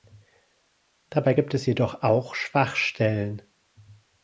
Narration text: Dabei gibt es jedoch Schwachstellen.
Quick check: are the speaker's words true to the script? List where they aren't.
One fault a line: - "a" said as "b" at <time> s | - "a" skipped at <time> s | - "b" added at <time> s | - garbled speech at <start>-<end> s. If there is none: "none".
- "auch" added at 2.0 s